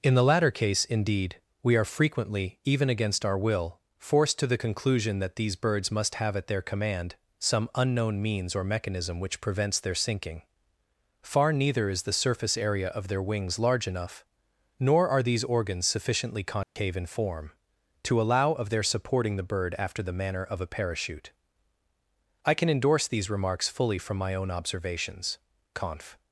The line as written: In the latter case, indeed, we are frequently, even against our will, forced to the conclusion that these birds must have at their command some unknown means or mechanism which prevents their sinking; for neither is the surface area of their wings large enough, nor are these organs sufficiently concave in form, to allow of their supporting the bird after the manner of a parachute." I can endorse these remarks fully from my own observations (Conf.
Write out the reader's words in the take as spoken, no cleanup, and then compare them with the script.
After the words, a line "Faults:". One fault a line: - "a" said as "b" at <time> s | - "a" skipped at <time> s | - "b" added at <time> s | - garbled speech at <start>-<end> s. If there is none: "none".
In the latter case, indeed, we are frequently, even against our will, forced to the conclusion that these birds must have at their command some unknown means or mechanism which prevents their sinking; far neither is the surface area of their wings large enough, nor are these organs sufficiently concave in form, to allow of their supporting the bird after the manner of a parachute." I can endorse these remarks fully from my own observations (Conf.
Faults:
- "for" said as "far" at 11.2 s